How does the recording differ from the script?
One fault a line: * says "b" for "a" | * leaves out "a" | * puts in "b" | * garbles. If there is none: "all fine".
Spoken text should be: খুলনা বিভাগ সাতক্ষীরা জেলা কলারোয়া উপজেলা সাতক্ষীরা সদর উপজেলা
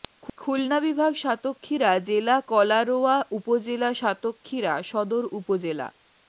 all fine